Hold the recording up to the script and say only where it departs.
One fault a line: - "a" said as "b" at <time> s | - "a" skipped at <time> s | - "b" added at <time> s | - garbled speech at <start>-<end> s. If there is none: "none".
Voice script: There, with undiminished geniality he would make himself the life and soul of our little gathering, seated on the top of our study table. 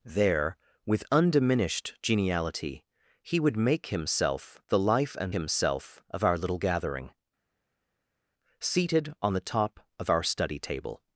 - "soul" said as "himself" at 5.3 s